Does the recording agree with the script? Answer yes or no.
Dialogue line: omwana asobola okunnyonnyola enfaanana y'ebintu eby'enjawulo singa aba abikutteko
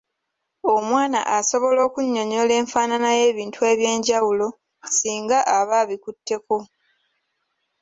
yes